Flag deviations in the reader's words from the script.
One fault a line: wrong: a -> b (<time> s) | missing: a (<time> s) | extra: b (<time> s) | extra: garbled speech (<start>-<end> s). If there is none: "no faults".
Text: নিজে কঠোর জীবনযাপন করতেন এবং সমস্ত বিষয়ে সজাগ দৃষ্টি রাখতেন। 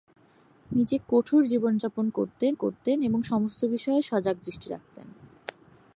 extra: করতেন (2.5 s)